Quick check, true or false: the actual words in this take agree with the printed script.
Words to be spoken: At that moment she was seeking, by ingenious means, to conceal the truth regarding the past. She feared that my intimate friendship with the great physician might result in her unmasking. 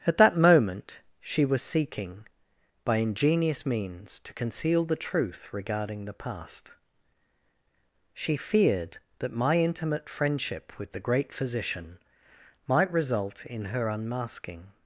true